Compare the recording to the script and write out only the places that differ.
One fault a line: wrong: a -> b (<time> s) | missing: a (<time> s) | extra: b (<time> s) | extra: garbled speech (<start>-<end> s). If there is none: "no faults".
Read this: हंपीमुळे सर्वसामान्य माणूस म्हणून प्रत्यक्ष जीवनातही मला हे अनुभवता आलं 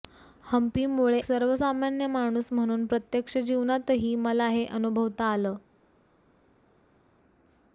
no faults